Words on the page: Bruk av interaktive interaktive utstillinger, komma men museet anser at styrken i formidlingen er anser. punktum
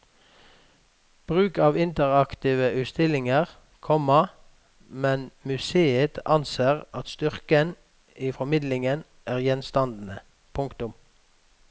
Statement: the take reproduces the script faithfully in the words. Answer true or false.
false